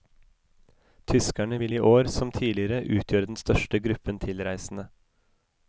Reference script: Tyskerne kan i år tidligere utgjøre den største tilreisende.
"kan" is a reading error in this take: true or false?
true